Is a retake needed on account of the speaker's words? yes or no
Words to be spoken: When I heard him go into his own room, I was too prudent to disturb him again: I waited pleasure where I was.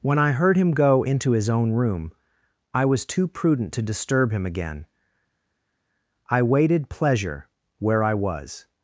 no